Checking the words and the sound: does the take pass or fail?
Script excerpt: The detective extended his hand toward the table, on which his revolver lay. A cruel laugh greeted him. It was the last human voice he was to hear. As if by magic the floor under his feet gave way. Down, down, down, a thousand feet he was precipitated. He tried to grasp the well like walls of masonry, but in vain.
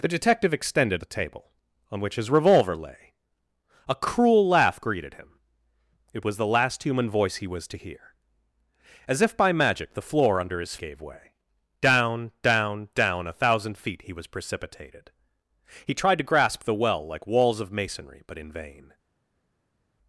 fail